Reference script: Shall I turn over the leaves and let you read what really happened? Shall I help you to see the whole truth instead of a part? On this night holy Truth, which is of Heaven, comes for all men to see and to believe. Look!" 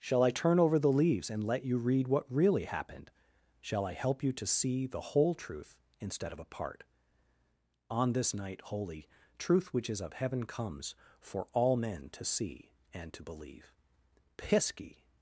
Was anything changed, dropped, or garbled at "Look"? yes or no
yes